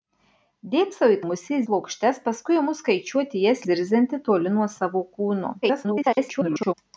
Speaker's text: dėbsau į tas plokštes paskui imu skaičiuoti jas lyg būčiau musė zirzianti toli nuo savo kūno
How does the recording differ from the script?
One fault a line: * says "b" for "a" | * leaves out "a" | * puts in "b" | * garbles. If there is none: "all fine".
* says "musė" for "tas"
* leaves out "lyg būčiau musė"
* garbles